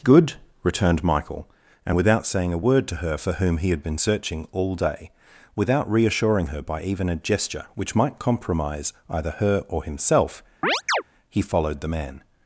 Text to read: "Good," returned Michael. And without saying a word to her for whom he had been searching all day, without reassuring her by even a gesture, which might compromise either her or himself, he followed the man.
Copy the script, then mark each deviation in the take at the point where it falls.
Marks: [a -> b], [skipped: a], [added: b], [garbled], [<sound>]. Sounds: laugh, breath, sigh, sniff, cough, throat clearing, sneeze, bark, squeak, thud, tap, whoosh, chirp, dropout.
"Good," returned Michael. And without saying a word to her for whom he had been searching all day, without reassuring her by even a gesture, which might compromise either her or himself, [chirp] he followed the man.